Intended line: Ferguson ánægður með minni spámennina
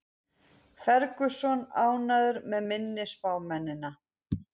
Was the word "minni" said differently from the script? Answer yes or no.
no